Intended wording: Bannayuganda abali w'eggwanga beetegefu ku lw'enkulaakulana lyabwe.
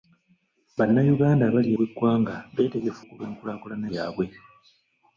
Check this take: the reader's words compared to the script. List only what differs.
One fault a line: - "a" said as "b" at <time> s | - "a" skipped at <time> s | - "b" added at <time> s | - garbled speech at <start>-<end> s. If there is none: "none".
none